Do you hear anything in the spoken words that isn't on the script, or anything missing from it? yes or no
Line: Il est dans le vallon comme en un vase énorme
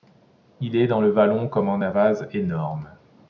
no